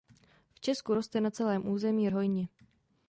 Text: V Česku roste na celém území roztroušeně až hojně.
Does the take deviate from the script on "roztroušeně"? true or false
true